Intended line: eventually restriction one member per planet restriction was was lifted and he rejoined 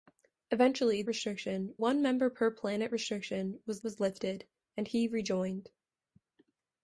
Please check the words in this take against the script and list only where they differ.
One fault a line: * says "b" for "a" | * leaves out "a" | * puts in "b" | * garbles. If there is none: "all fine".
all fine